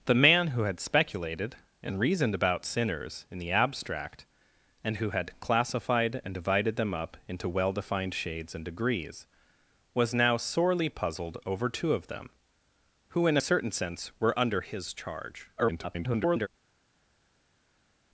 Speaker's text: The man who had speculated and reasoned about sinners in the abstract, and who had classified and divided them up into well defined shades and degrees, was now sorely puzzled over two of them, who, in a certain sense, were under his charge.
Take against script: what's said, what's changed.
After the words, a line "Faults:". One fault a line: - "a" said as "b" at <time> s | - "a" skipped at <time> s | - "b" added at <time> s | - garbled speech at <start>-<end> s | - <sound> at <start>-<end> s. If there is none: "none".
The man who had speculated and reasoned about sinners in the abstract, and who had classified and divided them up into well defined shades and degrees, was now sorely puzzled over two of them, who, in a certain sense, were under his charge. [garbled]
Faults:
- garbled speech at 15.6-16.5 s